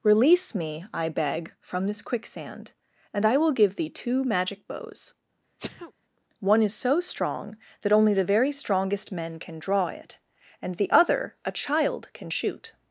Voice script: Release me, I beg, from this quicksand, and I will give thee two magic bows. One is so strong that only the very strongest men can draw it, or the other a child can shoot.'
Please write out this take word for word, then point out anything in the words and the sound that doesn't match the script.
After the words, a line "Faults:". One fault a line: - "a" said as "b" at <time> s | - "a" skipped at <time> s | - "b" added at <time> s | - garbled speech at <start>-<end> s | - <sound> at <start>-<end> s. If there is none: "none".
Release me, I beg, from this quicksand, and I will give thee two magic bows. One is so strong that only the very strongest men can draw it, and the other a child can shoot.'
Faults:
- sneeze at 5.6-5.9 s
- "or" said as "and" at 10.6 s